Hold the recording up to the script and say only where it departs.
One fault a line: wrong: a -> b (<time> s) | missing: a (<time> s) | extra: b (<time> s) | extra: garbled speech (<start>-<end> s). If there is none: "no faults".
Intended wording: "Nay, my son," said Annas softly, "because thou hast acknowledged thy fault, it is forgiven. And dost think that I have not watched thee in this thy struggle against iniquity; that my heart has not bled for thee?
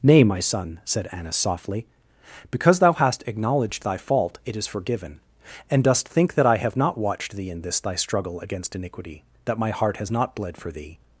no faults